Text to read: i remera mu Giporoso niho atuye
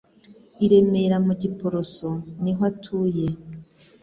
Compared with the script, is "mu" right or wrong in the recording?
right